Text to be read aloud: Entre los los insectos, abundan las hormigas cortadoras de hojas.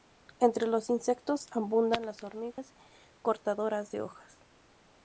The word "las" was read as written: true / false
true